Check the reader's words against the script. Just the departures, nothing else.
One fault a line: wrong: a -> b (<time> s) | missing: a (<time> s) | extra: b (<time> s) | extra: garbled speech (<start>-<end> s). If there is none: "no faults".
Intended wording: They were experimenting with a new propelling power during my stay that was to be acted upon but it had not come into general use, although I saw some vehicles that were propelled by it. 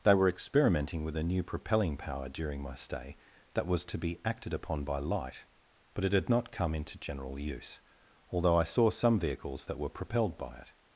extra: by light (4.8 s)